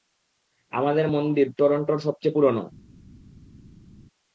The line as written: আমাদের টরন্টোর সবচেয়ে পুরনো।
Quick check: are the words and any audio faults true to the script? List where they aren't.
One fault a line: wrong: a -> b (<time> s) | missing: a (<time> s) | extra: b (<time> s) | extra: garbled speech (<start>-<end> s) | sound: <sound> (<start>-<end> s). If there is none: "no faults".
extra: মন্দির (1.1 s)